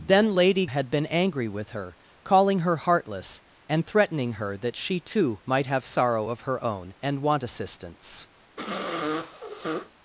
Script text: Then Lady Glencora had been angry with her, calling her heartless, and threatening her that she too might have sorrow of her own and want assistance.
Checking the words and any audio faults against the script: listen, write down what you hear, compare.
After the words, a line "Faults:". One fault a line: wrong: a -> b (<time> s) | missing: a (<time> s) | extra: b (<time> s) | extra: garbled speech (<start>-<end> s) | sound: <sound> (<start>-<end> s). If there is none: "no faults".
Then Lady Had been angry with her, calling her heartless, and threatening her that she too might have sorrow of her own and want assistance.
Faults:
missing: Glencora (0.7 s)
sound: sniff (8.6-9.9 s)